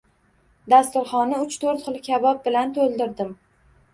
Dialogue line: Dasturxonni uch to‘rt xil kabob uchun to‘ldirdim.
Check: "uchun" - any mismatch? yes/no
yes